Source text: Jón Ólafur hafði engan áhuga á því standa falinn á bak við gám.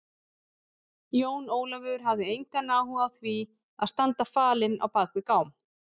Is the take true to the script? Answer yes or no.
no